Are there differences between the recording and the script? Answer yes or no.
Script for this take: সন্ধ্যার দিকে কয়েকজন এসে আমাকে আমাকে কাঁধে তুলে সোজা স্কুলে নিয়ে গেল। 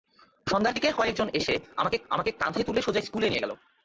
no